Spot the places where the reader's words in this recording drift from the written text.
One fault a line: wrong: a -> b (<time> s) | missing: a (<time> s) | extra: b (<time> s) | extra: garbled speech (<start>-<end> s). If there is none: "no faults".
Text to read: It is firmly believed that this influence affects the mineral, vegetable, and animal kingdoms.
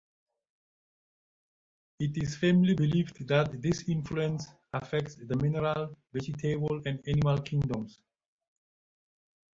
no faults